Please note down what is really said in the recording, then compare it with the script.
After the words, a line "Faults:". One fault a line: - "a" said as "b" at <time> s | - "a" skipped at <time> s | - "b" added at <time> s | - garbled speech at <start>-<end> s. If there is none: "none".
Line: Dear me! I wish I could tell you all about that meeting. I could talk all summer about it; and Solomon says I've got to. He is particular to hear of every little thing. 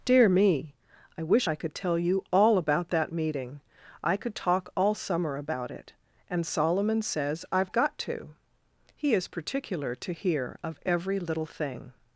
Dear me! I wish I could tell you all about that meeting. I could talk all summer about it; and Solomon says I've got to. He is particular to hear of every little thing.
Faults:
none